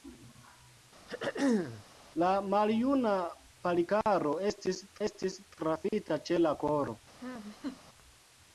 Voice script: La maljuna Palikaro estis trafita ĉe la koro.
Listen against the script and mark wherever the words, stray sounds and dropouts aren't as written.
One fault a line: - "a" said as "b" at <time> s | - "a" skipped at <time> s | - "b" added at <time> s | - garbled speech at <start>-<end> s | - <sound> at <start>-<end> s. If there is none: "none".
- throat clearing at 1.1-1.8 s
- "estis" added at 5.1 s
- laugh at 7.2-7.8 s